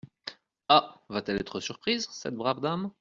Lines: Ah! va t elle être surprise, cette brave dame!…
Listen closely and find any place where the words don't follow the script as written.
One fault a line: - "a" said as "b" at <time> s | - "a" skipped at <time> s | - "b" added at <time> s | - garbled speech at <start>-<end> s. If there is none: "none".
none